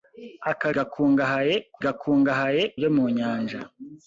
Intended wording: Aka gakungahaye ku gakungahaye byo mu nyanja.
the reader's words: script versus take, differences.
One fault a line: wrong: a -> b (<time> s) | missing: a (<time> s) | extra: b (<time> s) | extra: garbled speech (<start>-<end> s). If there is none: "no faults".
no faults